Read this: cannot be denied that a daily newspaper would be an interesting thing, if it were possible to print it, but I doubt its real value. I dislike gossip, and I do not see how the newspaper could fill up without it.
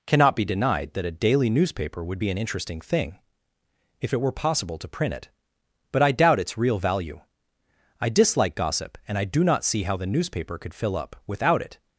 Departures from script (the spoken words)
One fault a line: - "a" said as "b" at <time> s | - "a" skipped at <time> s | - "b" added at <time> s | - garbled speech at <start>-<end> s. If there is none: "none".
none